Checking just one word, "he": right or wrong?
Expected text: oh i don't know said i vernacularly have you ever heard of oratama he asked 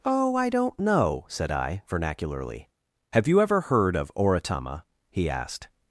right